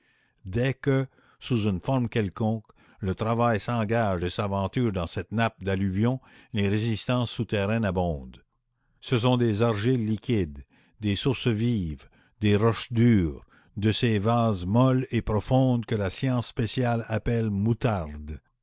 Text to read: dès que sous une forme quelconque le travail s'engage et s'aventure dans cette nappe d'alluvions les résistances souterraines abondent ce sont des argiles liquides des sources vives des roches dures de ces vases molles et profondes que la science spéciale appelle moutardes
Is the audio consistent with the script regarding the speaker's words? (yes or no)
yes